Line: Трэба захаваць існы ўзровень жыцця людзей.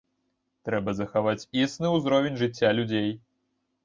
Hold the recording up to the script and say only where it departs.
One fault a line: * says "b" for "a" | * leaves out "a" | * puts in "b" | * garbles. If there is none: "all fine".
all fine